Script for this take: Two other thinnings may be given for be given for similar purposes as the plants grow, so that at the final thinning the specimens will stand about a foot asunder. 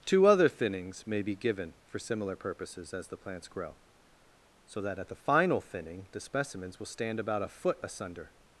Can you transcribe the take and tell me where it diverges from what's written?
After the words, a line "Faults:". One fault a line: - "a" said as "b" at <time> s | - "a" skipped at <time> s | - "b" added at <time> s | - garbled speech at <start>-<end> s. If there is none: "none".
Two other thinnings may be given for similar purposes as the plants grow, so that at the final thinning the specimens will stand about a foot asunder.
Faults:
- "be given for" skipped at 2.0 s